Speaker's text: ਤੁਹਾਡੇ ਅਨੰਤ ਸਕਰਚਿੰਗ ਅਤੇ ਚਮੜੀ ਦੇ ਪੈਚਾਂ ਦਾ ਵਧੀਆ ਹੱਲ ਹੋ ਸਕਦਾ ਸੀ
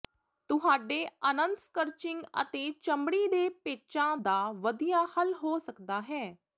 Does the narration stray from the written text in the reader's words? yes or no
yes